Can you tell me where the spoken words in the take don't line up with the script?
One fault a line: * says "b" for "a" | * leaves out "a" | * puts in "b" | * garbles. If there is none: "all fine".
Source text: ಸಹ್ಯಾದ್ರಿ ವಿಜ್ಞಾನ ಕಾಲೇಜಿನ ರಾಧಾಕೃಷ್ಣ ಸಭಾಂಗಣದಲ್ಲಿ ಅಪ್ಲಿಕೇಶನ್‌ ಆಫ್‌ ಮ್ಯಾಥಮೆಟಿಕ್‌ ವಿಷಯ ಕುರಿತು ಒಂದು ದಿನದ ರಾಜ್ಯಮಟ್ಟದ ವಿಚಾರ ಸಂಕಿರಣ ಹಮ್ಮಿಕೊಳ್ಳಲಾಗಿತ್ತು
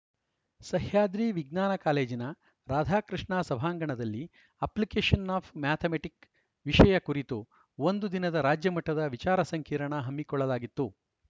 all fine